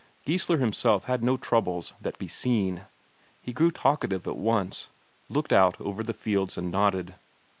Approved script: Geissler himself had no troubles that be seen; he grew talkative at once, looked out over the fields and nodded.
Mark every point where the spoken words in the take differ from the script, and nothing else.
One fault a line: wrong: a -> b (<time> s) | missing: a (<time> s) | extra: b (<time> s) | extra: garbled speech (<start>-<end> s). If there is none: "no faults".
no faults